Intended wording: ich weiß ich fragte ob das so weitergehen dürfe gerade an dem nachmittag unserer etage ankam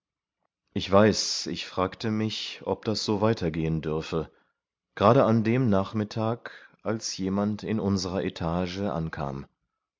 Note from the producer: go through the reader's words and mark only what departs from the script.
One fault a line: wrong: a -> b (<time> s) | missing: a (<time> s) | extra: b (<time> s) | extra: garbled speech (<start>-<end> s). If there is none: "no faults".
extra: mich (2.1 s)
extra: als jemand in (6.8 s)